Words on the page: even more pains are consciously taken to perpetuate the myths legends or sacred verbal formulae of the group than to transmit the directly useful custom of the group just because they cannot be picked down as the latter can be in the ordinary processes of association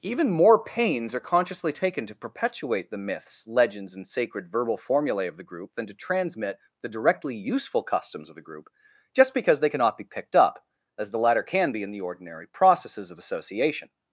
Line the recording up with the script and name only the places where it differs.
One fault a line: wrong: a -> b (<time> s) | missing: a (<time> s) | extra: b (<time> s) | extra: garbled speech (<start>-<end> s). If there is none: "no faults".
wrong: or -> and (3.9 s)
wrong: custom -> customs (7.8 s)
wrong: down -> up (10.4 s)